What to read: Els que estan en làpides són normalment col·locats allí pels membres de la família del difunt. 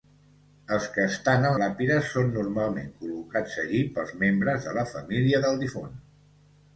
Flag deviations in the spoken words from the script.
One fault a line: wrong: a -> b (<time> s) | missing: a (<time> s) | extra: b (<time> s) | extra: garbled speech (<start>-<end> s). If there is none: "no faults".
no faults